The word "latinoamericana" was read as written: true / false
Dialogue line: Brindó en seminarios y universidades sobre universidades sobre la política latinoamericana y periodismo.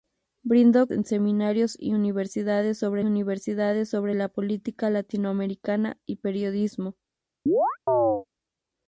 true